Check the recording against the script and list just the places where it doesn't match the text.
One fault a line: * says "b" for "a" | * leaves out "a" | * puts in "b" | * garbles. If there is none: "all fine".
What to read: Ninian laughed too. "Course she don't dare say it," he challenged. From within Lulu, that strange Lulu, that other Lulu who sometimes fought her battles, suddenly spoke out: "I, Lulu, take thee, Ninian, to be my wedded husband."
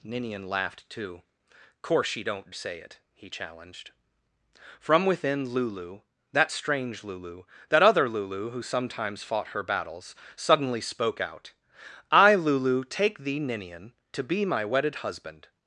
* leaves out "dare"